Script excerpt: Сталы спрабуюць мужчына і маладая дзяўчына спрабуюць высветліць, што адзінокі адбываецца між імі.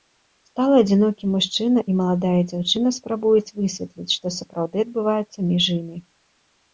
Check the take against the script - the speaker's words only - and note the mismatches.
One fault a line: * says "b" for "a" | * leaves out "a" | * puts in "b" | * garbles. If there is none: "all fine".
* says "адзінокі" for "спрабуюць"
* says "сапраўды" for "адзінокі"